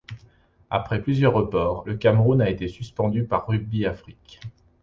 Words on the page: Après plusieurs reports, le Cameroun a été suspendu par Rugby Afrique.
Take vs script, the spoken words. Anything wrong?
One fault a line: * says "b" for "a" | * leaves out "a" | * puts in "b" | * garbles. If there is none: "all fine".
all fine